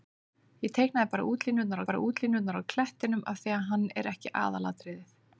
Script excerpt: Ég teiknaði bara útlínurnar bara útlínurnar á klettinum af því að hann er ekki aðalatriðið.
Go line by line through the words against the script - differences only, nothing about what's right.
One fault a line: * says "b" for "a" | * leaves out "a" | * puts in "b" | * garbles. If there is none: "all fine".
all fine